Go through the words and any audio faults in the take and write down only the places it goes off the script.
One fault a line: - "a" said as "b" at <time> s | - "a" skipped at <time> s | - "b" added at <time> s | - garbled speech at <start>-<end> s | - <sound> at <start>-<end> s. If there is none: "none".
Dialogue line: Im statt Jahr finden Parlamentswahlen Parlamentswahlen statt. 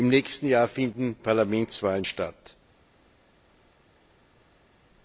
- "statt" said as "nächsten" at 0.1 s
- "Parlamentswahlen" skipped at 2.0 s